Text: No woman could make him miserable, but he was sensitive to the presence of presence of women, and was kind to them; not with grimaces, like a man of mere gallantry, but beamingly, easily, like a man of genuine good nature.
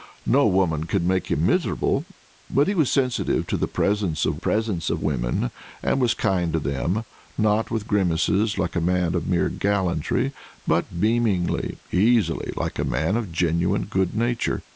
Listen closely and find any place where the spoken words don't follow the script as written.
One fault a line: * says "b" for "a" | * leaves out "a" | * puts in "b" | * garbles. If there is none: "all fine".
all fine